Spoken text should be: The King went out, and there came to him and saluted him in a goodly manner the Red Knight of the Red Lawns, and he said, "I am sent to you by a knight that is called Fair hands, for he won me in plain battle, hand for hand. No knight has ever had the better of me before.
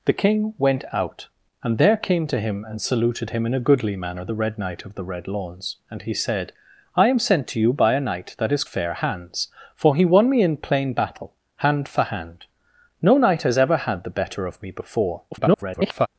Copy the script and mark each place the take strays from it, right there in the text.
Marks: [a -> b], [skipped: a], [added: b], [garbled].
The King went out, and there came to him and saluted him in a goodly manner the Red Knight of the Red Lawns, and he said, "I am sent to you by a knight that is [skipped: called] Fair hands, for he won me in plain battle, hand for hand. No knight has ever had the better of me before. [garbled]